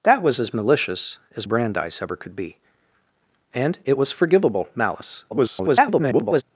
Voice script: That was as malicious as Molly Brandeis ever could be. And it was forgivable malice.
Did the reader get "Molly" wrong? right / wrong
wrong